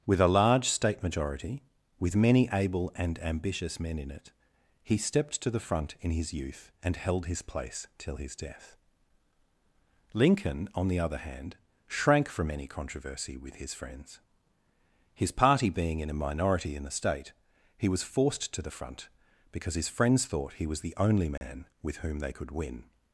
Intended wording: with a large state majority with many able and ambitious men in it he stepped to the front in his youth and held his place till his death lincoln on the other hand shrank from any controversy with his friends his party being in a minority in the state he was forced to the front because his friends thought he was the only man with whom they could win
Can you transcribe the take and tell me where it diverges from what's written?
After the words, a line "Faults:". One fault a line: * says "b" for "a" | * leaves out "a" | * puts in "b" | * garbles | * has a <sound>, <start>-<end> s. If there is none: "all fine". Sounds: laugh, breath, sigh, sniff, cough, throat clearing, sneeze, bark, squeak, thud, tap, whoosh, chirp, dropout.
with a large state majority with many able and ambitious men in it he stepped to the front in his youth and held his place till his death lincoln on the other hand shrank from any controversy with his friends his party being in a minority in the state he was forced to the front because his friends thought he was the only man with whom they could win
Faults:
* has a dropout, 21.4-21.4 s